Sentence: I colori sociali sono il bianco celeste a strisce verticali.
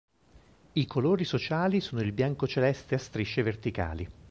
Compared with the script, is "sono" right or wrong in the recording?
right